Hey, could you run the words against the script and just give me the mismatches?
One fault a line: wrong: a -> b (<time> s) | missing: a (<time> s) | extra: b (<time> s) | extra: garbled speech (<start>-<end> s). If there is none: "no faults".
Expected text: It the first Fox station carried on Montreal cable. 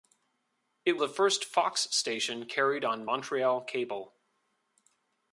no faults